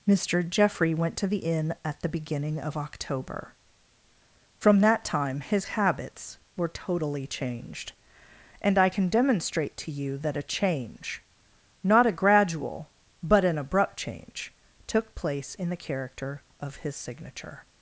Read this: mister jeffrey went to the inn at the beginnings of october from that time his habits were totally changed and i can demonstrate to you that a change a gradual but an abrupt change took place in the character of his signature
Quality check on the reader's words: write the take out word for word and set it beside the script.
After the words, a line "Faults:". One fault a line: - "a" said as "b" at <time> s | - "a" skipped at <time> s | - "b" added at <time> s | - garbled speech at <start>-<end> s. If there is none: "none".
mister jeffrey went to the inn at the beginning of october from that time his habits were totally changed and i can demonstrate to you that a change not a gradual but an abrupt change took place in the character of his signature
Faults:
- "beginnings" said as "beginning" at 2.1 s
- "not" added at 11.8 s